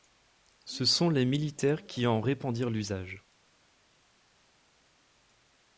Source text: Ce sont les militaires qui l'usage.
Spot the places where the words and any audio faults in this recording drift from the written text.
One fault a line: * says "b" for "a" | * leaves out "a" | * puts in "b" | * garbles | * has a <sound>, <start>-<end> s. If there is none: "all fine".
* puts in "en répandirent"